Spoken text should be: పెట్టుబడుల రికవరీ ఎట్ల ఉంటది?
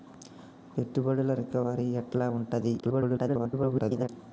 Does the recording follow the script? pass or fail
fail